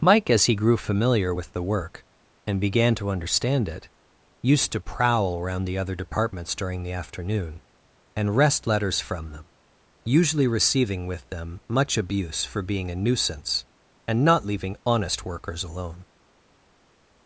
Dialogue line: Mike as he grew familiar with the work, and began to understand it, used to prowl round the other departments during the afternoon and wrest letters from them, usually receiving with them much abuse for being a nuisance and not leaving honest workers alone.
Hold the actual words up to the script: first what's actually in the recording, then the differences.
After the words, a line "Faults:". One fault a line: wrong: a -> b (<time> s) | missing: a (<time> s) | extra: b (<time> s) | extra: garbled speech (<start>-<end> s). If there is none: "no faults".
Mike as he grew familiar with the work, and began to understand it, used to prowl around the other departments during the afternoon and wrest letters from them, usually receiving with them much abuse for being a nuisance and not leaving honest workers alone.
Faults:
wrong: round -> around (5.4 s)